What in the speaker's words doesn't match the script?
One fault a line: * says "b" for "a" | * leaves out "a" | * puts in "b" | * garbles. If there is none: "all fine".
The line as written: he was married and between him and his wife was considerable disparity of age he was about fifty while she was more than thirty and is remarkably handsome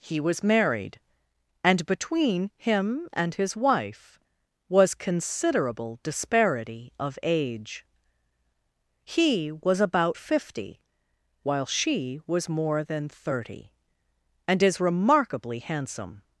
all fine